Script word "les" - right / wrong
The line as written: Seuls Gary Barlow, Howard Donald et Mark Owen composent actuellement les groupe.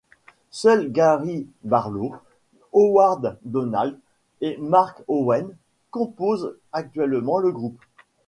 wrong